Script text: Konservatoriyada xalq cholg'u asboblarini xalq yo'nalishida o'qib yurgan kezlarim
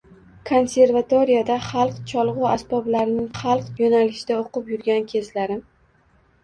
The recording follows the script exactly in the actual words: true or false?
true